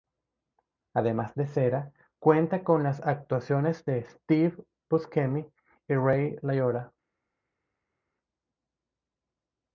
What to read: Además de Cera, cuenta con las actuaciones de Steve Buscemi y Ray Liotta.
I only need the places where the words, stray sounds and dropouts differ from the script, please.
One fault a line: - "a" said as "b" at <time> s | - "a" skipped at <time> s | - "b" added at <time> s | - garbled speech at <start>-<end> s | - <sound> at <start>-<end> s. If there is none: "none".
none